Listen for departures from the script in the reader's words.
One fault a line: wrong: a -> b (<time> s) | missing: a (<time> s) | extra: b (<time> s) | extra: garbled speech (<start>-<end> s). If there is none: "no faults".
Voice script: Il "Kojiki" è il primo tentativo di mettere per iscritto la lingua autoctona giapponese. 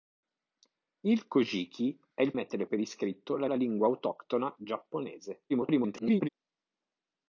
missing: primo tentativo di (2.3 s)
extra: la (3.4 s)
extra: garbled speech (5.5-6.3 s)